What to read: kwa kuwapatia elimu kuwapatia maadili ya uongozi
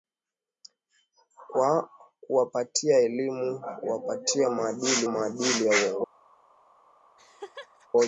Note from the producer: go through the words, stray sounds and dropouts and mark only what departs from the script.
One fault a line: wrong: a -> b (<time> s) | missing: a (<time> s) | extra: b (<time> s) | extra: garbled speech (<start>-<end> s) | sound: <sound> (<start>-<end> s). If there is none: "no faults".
extra: maadili (5.1 s)
sound: laugh (7.2-7.9 s)